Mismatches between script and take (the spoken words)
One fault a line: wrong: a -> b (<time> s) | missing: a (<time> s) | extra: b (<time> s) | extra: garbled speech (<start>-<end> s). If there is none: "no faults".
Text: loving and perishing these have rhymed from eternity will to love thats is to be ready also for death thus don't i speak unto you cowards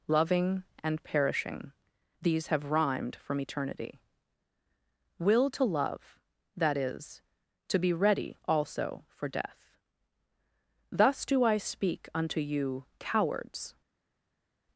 wrong: thats -> that (6.6 s)
wrong: don't -> do (11.2 s)